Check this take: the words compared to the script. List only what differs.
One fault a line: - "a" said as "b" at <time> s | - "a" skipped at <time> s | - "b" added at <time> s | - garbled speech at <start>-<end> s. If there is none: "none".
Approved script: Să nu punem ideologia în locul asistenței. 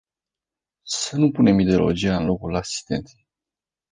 none